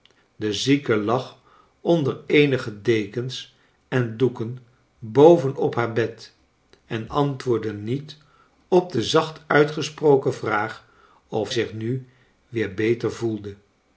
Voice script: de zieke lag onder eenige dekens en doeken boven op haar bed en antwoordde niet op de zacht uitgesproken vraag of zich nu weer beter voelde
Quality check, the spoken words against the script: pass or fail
pass